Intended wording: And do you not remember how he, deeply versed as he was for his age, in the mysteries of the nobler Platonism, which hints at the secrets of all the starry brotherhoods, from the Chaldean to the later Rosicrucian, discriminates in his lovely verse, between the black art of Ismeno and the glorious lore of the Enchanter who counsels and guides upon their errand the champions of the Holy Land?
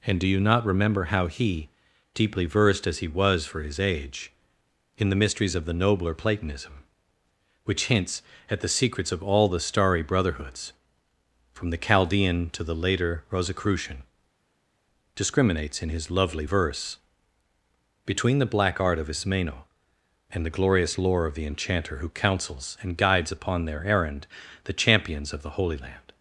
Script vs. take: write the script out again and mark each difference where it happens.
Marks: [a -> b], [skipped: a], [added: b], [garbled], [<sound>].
And do you not remember how he, deeply versed as he was for his age, in the mysteries of the nobler Platonism, which hints at the secrets of all the starry brotherhoods, from the Chaldean to the later Rosicrucian, discriminates in his lovely verse, between the black art of Ismeno and the glorious lore of the Enchanter who counsels and guides upon their errand the champions of the Holy Land?